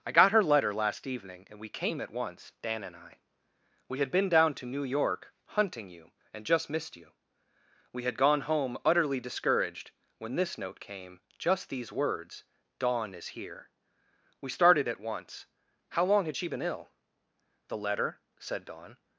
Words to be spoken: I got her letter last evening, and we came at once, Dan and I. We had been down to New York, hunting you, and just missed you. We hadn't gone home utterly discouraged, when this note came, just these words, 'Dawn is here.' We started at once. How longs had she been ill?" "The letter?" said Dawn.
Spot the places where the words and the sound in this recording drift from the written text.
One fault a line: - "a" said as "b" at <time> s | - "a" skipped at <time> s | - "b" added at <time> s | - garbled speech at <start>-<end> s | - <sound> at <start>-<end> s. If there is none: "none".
- "hadn't" said as "had" at 8.0 s
- "longs" said as "long" at 16.1 s